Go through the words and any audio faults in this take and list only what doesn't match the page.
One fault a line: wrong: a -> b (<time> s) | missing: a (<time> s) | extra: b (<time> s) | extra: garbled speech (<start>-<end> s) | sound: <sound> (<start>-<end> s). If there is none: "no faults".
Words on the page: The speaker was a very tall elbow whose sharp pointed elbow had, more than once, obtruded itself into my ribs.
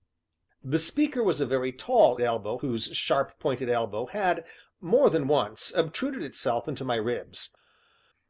no faults